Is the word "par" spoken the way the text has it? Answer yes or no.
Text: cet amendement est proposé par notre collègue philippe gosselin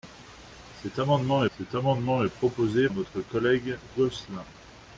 no